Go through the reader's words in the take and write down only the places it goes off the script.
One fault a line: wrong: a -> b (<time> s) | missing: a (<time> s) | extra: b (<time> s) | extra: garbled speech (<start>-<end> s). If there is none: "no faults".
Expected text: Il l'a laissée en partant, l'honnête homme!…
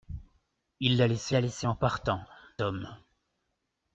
extra: l'a laissée (1.3 s)
missing: l'honnête (2.2 s)